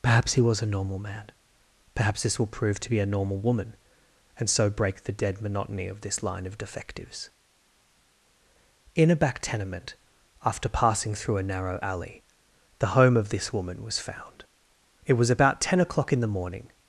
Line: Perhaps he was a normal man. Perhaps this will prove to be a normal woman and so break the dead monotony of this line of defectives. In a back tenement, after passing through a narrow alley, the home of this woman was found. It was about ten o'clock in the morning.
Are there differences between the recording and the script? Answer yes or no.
no